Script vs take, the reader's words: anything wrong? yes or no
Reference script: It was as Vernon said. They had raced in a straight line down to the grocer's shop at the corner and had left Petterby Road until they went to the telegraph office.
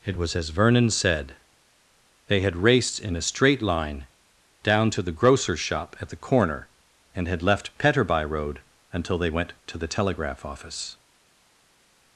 no